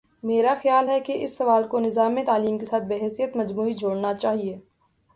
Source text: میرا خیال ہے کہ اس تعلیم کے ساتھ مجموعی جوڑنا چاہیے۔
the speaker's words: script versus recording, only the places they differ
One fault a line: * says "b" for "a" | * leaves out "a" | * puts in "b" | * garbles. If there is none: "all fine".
* puts in "سوال کو نظام"
* puts in "بحیثیت"